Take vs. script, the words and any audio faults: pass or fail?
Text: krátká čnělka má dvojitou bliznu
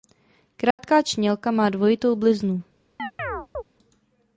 fail